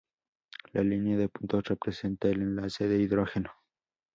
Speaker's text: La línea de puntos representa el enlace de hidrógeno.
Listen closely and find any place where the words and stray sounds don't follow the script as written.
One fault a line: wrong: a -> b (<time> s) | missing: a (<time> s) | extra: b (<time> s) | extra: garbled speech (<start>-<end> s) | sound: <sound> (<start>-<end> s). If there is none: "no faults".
no faults